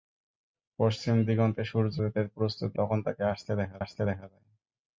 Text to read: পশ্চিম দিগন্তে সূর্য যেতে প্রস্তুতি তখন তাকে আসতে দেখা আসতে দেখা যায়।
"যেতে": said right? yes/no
yes